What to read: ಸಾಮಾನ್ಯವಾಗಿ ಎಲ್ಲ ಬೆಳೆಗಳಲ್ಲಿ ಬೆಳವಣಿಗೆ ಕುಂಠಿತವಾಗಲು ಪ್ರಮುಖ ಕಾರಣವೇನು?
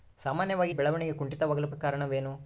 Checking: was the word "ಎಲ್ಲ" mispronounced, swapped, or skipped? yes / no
yes